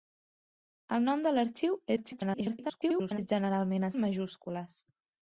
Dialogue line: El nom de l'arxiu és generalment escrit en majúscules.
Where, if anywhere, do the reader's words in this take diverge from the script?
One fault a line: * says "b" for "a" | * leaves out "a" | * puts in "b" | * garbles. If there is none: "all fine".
* garbles
* leaves out "escrit"